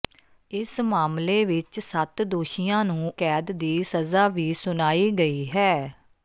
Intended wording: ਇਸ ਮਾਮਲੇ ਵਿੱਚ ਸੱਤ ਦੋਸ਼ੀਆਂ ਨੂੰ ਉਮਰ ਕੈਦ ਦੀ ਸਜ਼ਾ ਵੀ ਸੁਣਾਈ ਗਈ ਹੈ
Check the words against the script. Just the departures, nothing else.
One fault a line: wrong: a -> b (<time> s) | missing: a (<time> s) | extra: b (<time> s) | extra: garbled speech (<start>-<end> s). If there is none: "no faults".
missing: ਉਮਰ (3.1 s)